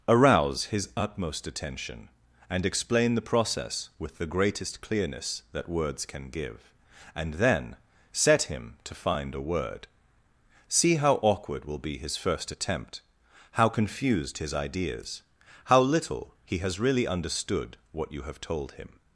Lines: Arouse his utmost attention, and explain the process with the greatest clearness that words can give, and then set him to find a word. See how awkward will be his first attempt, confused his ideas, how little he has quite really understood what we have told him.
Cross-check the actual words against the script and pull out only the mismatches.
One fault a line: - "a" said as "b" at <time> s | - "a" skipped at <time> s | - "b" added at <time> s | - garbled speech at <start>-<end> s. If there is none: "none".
- "how" added at 13.5 s
- "quite" skipped at 16.8 s
- "we" said as "you" at 18.1 s